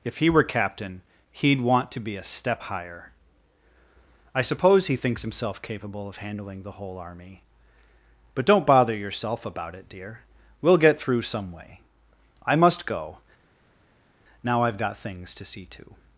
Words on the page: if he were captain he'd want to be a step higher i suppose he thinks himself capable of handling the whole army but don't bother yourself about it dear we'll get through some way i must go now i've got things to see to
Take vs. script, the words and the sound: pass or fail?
pass